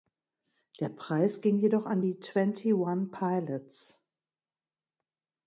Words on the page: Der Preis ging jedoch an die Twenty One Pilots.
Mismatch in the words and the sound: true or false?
false